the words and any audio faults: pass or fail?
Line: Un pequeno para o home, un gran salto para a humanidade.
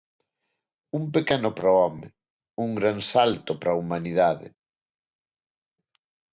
pass